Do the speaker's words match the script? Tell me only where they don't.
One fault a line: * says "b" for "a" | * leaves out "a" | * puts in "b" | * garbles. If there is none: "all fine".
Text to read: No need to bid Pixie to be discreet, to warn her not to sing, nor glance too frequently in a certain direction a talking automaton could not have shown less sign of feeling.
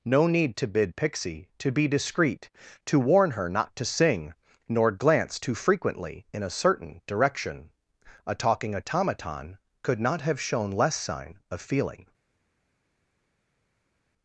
all fine